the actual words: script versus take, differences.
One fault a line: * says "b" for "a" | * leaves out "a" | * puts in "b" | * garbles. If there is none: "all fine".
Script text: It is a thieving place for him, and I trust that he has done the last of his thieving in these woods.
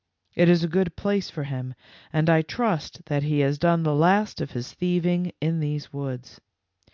* says "good" for "thieving"